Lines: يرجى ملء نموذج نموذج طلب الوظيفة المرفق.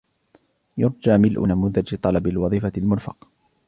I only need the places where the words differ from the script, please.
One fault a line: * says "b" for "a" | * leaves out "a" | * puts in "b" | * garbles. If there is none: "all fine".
* leaves out "نموذج"